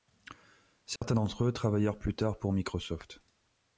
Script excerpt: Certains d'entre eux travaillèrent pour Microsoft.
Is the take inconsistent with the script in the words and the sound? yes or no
yes